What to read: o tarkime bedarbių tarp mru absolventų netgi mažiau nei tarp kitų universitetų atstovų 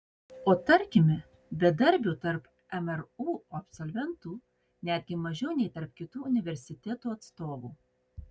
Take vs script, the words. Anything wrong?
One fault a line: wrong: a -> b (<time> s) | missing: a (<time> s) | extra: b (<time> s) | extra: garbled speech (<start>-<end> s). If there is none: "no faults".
no faults